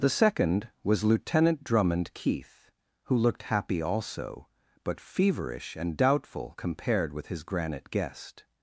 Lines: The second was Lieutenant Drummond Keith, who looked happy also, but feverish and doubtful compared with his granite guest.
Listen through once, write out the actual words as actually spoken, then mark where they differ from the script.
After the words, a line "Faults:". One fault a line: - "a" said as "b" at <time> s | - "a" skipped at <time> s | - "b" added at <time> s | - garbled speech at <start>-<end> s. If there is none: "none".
The second was Lieutenant Drummond Keith, who looked happy also, but feverish and doubtful compared with his granite guest.
Faults:
none